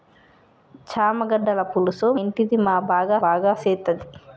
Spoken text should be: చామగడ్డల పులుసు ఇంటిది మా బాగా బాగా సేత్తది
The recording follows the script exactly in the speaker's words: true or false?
true